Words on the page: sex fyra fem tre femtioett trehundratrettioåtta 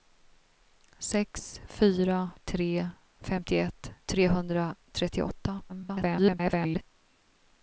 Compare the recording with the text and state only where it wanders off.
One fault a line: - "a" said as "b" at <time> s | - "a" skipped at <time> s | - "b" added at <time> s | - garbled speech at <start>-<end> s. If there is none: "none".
- "fem" skipped at 2.3 s
- garbled speech at 5.7-6.8 s